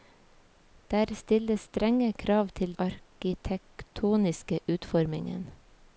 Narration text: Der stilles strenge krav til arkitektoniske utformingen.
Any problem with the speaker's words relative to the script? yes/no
no